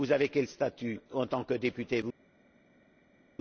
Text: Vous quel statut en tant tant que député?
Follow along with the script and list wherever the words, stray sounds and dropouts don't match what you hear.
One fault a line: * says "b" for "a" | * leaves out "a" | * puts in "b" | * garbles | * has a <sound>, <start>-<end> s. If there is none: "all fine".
* puts in "avez"
* leaves out "tant"